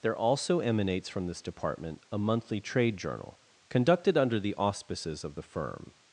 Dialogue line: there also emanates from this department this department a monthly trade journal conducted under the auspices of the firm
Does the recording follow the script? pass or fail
fail